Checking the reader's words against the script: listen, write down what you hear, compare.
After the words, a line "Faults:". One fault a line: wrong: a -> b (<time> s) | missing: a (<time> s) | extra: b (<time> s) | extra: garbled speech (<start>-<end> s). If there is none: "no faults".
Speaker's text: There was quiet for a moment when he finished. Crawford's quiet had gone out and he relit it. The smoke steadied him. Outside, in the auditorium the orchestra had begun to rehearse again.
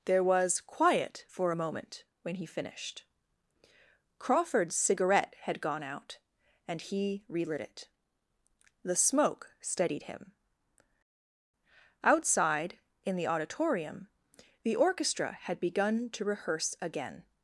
There was quiet for a moment when he finished. Crawford's cigarette had gone out and he relit it. The smoke steadied him. Outside, in the auditorium the orchestra had begun to rehearse again.
Faults:
wrong: quiet -> cigarette (4.8 s)